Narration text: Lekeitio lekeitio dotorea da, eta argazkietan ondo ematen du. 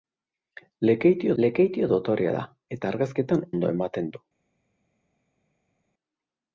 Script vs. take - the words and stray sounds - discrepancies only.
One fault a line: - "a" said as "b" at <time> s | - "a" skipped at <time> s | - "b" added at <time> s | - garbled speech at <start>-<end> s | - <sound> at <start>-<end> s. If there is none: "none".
none